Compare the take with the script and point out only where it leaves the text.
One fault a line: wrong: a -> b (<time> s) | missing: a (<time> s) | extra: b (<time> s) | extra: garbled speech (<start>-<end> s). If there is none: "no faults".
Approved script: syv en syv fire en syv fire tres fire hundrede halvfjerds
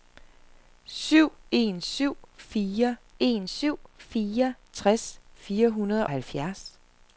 no faults